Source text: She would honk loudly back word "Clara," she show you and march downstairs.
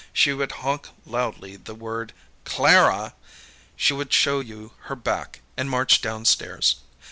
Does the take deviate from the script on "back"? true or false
true